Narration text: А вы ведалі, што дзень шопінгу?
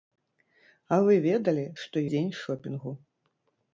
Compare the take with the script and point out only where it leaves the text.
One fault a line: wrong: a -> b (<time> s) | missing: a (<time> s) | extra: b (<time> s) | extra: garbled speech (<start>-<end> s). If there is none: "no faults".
no faults